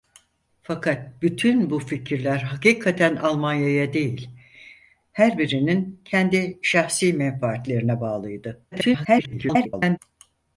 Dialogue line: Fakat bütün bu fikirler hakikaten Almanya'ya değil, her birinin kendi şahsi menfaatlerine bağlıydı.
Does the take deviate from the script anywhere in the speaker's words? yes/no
yes